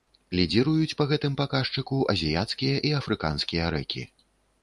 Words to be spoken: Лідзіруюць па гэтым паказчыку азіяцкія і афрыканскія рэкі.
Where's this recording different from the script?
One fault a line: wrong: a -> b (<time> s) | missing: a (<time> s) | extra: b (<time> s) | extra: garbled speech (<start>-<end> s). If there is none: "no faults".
no faults